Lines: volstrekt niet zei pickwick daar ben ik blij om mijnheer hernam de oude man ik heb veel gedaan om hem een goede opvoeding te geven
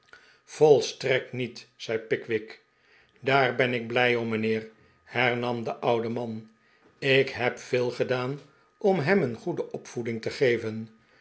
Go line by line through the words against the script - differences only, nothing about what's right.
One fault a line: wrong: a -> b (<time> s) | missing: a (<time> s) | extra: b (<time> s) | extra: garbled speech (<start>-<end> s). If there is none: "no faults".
no faults